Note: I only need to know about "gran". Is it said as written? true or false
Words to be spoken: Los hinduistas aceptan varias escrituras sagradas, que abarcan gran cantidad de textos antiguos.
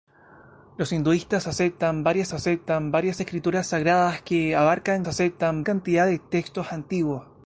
false